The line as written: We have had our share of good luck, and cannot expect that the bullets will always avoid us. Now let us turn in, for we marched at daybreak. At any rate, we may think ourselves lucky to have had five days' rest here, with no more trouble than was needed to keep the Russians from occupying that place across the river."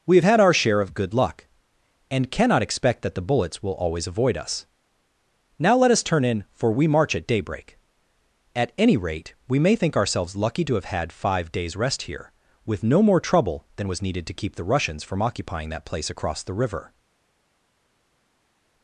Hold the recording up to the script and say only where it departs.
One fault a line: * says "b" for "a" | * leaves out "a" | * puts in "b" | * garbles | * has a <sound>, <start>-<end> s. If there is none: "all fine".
* says "march" for "marched"